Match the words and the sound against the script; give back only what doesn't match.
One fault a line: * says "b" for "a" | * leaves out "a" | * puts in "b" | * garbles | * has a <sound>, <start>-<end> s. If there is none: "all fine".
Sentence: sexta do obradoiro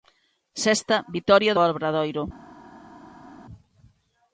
* puts in "vitoria"